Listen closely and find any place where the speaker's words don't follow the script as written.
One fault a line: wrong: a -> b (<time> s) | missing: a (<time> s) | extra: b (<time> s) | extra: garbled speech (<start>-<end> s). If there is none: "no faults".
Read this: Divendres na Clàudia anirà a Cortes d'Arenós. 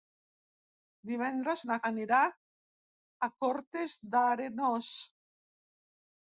missing: Clàudia (1.8 s)